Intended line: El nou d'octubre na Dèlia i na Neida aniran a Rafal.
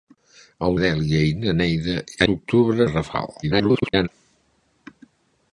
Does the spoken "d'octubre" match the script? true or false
false